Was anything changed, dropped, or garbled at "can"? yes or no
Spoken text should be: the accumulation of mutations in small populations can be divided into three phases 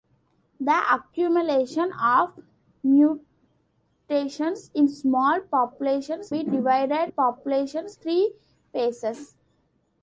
yes